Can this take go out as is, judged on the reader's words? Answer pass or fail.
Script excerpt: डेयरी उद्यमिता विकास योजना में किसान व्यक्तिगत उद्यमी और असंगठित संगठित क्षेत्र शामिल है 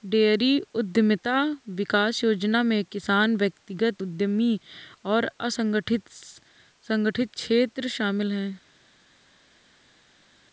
pass